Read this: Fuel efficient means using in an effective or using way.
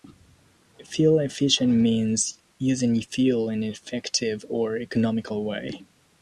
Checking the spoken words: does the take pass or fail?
fail